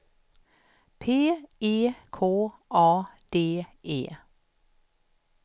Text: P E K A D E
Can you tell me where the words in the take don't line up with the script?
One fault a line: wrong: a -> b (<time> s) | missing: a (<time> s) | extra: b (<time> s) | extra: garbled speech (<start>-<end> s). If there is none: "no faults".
no faults